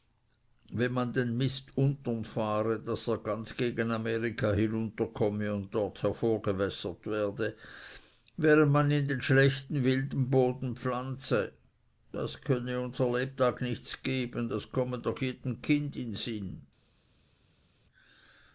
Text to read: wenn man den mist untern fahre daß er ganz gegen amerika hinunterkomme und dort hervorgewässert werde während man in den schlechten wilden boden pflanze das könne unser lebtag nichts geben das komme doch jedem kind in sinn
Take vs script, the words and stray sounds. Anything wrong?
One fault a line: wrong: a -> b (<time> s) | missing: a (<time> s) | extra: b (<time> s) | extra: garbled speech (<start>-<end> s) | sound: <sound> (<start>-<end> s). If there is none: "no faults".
no faults